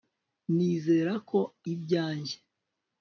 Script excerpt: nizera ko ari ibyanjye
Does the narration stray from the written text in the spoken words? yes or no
yes